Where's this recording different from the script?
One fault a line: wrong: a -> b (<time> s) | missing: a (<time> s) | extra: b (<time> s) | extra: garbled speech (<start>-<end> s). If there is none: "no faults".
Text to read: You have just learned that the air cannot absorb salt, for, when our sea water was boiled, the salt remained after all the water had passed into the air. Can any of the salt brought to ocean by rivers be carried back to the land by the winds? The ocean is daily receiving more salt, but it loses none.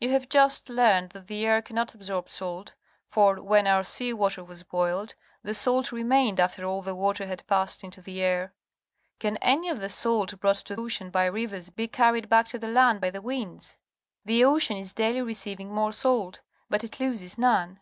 no faults